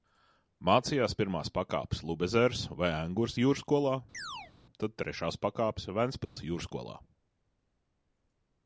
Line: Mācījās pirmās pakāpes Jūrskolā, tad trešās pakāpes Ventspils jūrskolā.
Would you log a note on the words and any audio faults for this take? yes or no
yes